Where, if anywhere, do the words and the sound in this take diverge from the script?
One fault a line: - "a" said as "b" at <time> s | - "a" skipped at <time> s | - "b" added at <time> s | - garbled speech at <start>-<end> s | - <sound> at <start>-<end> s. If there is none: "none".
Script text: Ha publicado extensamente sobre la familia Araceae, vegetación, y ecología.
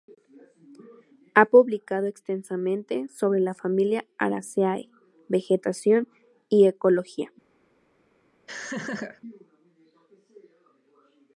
- laugh at 8.5-9.2 s